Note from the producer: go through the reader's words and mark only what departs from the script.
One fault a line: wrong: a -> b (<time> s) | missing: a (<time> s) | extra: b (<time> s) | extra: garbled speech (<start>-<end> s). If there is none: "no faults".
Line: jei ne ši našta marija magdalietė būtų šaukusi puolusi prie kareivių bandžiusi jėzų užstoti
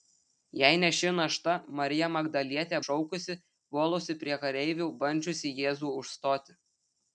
missing: būtų (2.8 s)